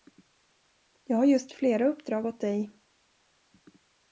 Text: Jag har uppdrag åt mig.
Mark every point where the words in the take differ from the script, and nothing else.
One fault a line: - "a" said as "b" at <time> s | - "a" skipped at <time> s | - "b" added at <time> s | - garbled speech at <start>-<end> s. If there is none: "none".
- "just flera" added at 1.2 s
- "mig" said as "dig" at 2.4 s